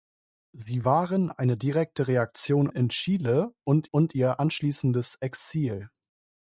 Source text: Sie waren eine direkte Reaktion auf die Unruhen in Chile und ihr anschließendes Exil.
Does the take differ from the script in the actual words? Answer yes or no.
yes